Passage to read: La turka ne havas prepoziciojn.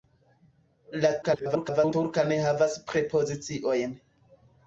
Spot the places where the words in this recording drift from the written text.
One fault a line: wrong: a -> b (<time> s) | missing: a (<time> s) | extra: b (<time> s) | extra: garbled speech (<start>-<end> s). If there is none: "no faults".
extra: garbled speech (1.2-1.9 s)